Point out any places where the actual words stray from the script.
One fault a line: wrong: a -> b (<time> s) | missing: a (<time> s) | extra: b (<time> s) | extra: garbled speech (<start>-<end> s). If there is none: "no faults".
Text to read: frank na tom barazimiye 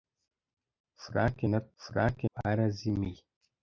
wrong: tom -> frank (1.8 s)